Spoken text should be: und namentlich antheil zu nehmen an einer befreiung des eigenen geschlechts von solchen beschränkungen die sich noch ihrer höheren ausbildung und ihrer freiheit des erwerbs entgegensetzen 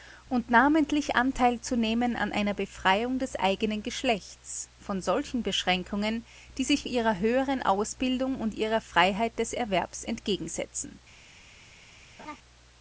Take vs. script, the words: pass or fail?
fail